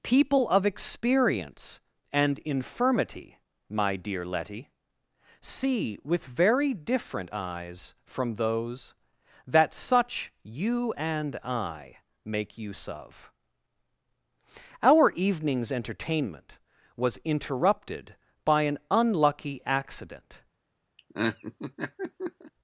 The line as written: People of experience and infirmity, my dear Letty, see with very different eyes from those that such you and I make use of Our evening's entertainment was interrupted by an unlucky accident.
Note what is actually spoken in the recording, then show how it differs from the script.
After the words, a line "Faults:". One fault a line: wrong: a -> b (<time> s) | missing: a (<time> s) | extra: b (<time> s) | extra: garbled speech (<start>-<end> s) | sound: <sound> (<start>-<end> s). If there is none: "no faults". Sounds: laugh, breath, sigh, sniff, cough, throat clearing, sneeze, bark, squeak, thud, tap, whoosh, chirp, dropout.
People of experience and infirmity, my dear Letty, see with very different eyes from those that such you and I make use of Our evening's entertainment was interrupted by an unlucky accident.
Faults:
sound: laugh (21.0-22.5 s)